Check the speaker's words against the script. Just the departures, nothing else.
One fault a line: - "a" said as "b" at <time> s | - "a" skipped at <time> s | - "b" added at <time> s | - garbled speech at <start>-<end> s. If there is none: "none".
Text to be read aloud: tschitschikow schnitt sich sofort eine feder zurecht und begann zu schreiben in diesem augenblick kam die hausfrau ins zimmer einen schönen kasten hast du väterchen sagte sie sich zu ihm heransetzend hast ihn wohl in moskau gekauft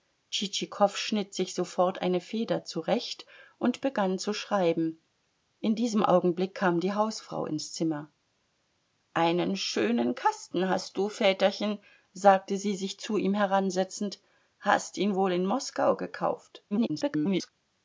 - garbled speech at 16.7-17.5 s